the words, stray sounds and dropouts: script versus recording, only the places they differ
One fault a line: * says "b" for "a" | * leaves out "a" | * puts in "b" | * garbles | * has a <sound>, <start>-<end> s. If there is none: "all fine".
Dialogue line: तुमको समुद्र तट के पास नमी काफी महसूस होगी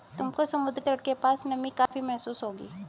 * has a dropout, 1.9-1.9 s